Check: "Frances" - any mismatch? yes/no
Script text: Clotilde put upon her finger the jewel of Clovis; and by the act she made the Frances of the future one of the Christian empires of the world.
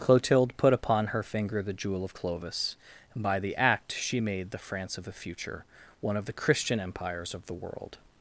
yes